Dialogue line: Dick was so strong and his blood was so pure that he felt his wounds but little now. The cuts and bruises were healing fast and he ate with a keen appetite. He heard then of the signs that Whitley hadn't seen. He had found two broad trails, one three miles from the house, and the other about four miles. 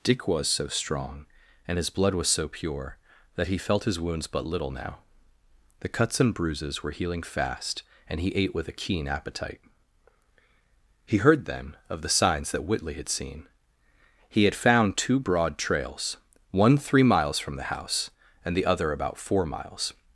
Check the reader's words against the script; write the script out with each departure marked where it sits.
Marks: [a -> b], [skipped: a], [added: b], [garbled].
Dick was so strong and his blood was so pure that he felt his wounds but little now. The cuts and bruises were healing fast and he ate with a keen appetite. He heard then of the signs that Whitley [hadn't -> had] seen. He had found two broad trails, one three miles from the house, and the other about four miles.